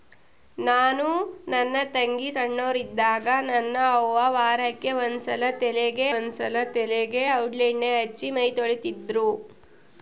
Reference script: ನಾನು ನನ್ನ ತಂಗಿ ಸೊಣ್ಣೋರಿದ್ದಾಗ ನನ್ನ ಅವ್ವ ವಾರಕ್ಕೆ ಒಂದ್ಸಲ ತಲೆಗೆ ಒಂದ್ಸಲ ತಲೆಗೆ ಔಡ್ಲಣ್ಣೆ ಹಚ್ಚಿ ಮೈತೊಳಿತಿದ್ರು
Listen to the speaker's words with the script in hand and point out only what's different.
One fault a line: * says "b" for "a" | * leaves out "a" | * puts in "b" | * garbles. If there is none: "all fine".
all fine